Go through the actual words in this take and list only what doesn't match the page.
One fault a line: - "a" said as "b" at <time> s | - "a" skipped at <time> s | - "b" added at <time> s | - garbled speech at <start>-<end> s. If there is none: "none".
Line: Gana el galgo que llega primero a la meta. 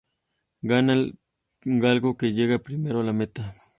none